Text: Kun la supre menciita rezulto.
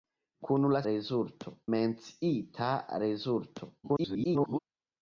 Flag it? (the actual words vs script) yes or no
yes